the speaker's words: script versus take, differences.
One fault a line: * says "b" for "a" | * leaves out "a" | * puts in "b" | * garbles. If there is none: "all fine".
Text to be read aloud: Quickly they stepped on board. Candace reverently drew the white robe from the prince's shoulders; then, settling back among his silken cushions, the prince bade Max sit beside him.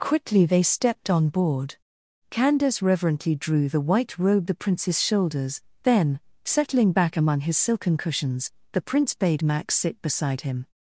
* leaves out "from"